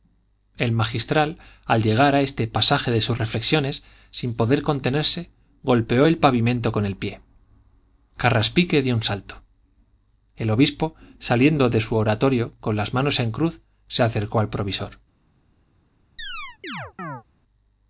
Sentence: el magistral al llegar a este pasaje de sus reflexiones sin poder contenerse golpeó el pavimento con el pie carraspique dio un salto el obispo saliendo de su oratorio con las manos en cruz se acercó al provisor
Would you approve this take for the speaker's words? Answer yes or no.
yes